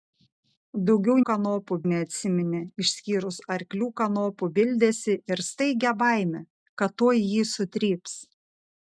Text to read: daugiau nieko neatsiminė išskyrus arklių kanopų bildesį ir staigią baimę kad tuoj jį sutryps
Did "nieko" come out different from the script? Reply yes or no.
yes